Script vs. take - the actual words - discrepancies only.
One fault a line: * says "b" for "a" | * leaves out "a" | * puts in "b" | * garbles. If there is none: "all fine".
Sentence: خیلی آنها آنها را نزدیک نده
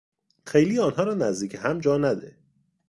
* leaves out "آنها"
* puts in "هم جا"